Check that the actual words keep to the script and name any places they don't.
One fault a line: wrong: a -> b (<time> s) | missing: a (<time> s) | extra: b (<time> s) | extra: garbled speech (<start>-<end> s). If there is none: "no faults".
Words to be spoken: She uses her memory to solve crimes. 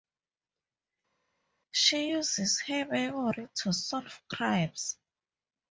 no faults